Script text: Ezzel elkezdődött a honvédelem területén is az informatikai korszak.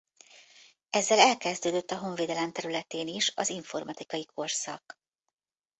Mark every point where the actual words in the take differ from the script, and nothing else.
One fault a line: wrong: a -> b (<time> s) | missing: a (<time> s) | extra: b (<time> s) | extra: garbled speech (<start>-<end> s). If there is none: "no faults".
no faults